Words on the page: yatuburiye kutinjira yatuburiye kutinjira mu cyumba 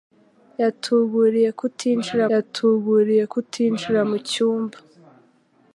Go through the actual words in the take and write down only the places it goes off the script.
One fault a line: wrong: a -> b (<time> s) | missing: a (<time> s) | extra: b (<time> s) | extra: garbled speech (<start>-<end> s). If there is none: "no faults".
no faults